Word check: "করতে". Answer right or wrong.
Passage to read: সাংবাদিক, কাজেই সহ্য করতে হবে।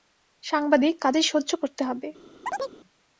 right